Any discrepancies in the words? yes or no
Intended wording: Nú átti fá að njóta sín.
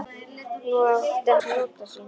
no